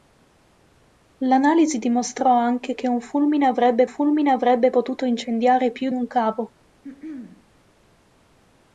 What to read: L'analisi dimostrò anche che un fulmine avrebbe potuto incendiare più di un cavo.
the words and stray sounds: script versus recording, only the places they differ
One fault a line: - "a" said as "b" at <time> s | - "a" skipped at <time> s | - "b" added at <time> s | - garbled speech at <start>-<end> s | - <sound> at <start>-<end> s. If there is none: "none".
- "fulmine avrebbe" added at 3.9 s
- "di" skipped at 5.9 s
- throat clearing at 6.8-7.5 s